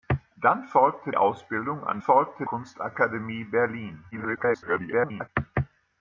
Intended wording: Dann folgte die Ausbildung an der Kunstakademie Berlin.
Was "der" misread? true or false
true